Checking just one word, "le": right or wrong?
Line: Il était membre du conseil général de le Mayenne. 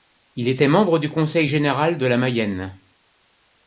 wrong